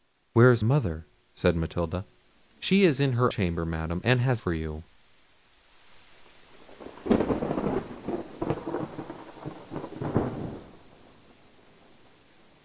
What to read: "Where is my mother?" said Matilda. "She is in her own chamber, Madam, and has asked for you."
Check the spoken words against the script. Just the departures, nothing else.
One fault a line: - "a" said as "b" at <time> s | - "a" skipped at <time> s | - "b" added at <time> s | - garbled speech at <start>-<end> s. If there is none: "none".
- "my" skipped at 0.7 s
- "own" skipped at 3.3 s
- "asked" skipped at 4.4 s